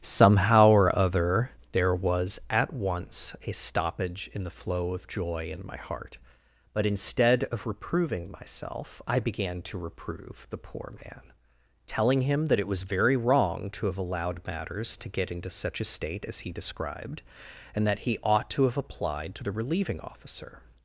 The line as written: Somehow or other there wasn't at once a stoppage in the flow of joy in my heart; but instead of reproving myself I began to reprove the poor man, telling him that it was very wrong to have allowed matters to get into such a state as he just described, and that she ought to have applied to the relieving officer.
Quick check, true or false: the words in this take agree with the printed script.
false